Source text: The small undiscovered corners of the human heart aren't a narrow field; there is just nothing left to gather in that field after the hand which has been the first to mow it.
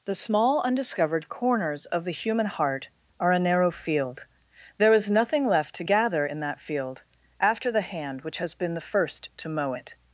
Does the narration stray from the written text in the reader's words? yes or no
yes